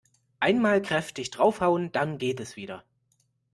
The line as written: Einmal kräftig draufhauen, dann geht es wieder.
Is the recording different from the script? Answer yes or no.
no